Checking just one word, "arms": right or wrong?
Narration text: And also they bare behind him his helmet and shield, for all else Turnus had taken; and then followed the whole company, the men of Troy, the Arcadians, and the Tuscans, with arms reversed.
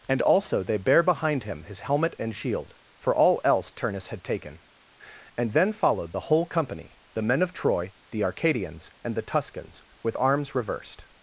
right